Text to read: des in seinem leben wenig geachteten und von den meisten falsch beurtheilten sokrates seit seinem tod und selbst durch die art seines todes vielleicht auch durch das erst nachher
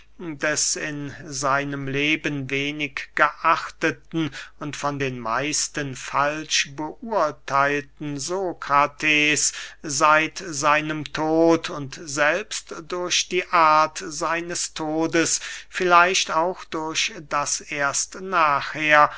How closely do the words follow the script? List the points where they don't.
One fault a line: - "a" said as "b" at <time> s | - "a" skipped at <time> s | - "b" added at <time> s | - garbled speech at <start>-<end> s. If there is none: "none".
none